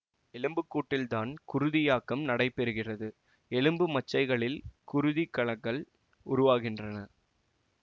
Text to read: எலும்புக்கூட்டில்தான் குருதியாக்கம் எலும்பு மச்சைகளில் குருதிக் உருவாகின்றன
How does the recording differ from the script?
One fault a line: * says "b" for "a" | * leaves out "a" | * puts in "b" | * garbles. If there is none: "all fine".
* puts in "நடைபெறுகிறது"
* puts in "கலங்கள்"